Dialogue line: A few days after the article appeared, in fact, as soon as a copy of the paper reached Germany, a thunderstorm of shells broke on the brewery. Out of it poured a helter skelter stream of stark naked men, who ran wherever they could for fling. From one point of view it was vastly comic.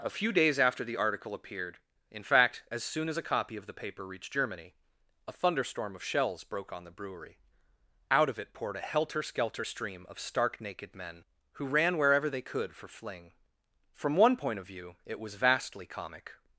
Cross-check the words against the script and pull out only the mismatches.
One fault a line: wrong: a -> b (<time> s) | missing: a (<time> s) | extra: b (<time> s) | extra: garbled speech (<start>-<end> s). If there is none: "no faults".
no faults